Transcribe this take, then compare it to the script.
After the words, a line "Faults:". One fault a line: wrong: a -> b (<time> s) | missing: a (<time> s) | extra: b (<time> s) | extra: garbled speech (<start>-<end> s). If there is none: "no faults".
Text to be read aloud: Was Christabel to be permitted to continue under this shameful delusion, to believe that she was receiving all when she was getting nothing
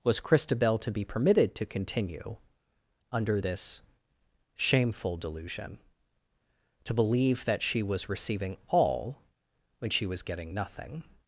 Was Christabel to be permitted to continue under this shameful delusion, to believe that she was receiving all when she was getting nothing
Faults:
no faults